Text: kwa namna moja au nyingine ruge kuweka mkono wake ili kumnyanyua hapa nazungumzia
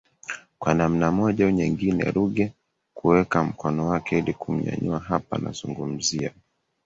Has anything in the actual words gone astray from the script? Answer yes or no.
no